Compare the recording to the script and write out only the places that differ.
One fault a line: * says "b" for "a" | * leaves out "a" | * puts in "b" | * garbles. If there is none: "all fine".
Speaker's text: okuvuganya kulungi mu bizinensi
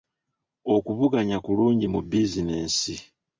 all fine